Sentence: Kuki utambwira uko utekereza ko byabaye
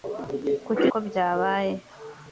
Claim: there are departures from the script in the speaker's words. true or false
true